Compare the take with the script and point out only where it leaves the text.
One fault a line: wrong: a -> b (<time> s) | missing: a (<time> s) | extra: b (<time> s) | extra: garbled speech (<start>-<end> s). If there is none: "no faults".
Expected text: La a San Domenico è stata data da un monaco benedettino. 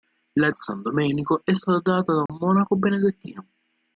no faults